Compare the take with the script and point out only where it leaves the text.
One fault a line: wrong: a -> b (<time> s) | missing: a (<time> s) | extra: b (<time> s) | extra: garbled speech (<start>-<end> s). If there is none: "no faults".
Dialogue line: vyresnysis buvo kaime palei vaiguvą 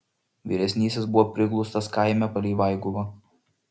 extra: priglaustas (1.4 s)